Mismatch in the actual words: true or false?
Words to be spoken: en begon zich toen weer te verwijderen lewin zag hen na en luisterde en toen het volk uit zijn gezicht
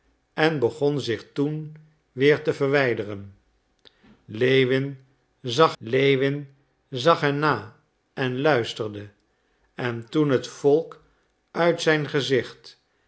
true